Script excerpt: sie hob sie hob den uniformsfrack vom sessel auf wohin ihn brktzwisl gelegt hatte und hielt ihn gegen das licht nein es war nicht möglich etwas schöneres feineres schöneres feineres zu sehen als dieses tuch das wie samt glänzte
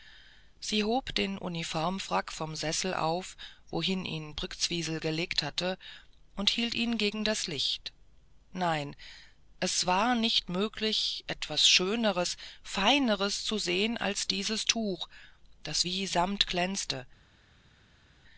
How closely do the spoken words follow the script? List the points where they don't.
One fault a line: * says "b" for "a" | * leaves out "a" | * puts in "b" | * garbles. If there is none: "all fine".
* leaves out "sie hob"
* leaves out "schöneres feineres"